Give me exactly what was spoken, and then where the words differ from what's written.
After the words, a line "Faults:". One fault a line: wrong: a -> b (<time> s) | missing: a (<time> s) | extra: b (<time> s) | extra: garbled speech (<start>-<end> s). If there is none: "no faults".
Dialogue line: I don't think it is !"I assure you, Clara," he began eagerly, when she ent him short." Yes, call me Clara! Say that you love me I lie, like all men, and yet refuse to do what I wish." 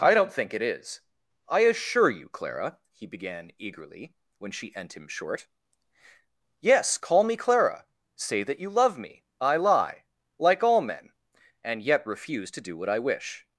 I don't think it is !"I assure you, Clara," he began eagerly, when she ent him short." Yes, call me Clara! Say that you love me I lie, like all men, and yet refuse to do what I wish."
Faults:
no faults